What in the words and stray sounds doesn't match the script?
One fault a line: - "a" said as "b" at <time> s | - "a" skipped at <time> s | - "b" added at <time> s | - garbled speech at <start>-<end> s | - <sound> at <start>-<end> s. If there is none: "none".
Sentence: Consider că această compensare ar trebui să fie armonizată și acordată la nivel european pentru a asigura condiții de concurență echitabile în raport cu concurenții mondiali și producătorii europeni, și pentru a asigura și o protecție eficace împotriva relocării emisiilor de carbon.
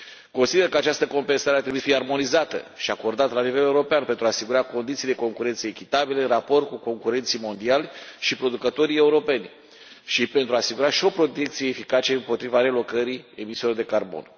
- "să" skipped at 1.8 s